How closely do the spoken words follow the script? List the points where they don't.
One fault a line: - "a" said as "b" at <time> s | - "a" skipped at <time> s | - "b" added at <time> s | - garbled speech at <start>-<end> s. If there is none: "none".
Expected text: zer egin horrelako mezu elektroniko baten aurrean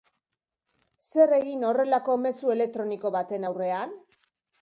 none